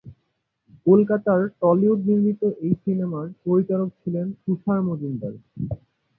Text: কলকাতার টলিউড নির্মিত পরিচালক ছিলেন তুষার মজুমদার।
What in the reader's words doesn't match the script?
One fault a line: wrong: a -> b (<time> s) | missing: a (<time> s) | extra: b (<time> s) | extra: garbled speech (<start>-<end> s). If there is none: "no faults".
extra: এই সিনেমার (2.6 s)